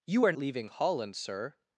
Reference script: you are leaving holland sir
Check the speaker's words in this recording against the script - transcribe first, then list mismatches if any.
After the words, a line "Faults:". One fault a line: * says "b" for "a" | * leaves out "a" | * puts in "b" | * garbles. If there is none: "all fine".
you are leaving holland sir
Faults:
all fine